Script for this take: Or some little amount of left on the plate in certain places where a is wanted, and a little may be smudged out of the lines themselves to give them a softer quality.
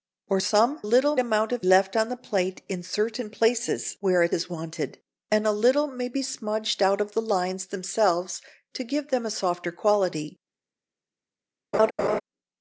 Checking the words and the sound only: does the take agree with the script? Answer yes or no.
no